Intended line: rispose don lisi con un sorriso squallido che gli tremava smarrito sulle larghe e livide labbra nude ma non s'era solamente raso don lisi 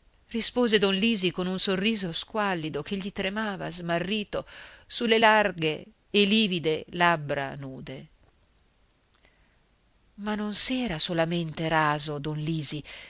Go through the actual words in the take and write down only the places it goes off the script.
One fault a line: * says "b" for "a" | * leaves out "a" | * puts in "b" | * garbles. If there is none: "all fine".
all fine